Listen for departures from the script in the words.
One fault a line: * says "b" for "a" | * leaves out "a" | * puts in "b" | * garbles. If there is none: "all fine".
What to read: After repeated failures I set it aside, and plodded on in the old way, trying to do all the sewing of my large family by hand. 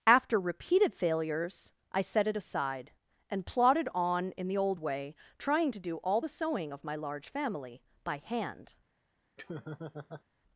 all fine